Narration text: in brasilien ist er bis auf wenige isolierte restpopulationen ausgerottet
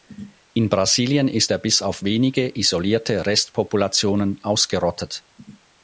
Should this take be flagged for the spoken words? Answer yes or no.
no